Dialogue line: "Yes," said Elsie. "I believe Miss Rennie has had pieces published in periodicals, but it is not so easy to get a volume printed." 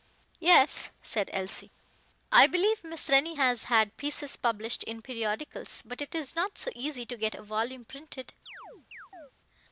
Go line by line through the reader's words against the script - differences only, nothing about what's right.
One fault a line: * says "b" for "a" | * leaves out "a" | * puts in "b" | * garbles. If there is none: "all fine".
all fine